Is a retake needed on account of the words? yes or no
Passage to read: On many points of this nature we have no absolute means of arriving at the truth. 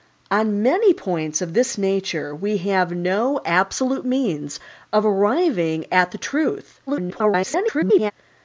yes